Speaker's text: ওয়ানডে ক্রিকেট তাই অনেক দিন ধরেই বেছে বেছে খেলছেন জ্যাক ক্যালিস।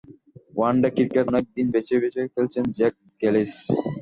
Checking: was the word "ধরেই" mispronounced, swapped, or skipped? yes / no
yes